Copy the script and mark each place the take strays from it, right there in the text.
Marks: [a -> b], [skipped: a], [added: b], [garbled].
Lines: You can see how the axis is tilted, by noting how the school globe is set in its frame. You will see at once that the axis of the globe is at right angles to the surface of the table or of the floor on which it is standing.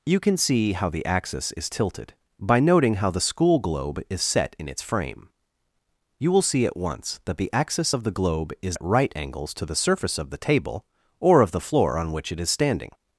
You can see how the axis is tilted, by noting how the school globe is set in its frame. You will see at once that the axis of the globe is at right angles to the surface of the table or of the floor on which it is standing.